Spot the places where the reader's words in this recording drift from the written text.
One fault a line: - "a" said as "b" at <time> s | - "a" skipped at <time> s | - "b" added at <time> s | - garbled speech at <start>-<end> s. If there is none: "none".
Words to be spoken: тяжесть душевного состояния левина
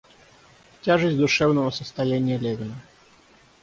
none